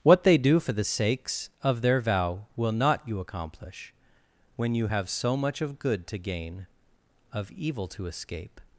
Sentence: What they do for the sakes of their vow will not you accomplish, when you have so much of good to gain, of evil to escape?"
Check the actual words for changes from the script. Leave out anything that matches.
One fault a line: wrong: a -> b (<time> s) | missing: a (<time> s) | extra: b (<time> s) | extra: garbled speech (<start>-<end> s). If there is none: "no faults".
no faults